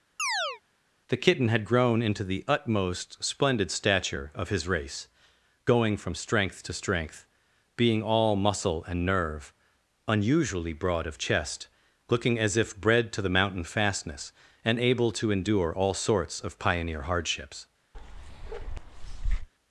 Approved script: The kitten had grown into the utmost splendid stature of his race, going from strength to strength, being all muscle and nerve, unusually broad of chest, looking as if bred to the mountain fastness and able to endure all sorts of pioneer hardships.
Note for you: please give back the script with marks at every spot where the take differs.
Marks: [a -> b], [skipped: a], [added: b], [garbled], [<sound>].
[chirp] The kitten had grown into the utmost splendid stature of his race, going from strength to strength, being all muscle and nerve, unusually broad of chest, looking as if bred to the mountain fastness and able to endure all sorts of pioneer hardships. [bark]